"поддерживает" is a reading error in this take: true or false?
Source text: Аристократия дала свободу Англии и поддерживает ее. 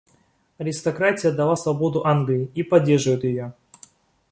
false